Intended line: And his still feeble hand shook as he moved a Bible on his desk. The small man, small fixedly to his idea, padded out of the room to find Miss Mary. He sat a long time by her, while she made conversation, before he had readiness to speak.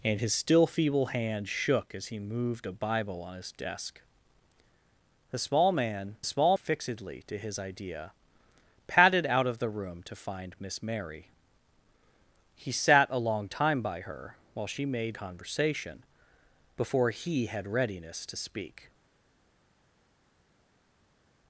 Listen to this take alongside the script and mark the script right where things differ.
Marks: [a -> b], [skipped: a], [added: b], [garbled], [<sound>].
And his still feeble hand shook as he moved a Bible on his desk. The small man, small fixedly to his idea, padded out of the room to find Miss Mary. He sat a long time by her, while she made conversation, before he had readiness to speak.